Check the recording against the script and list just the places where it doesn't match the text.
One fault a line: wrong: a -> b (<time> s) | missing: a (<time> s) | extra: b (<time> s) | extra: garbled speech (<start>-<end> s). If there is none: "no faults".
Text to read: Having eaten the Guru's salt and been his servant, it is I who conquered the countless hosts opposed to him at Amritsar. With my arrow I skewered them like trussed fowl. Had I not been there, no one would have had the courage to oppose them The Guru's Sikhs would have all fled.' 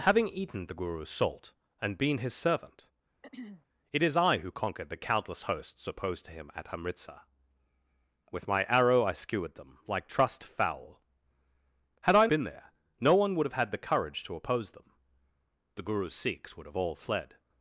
missing: not (12.3 s)